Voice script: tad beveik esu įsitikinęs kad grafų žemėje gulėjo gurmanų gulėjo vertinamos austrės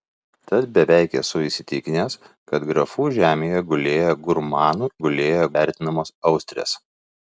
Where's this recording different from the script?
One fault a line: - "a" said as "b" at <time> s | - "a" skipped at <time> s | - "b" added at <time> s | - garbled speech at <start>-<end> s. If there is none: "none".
none